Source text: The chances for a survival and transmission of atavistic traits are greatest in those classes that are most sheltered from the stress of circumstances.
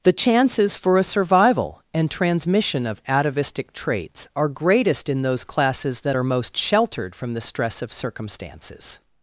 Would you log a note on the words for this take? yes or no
no